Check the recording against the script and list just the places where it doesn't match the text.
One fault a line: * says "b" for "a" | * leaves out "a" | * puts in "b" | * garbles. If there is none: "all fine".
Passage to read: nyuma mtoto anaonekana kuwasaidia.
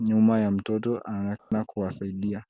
* puts in "ya"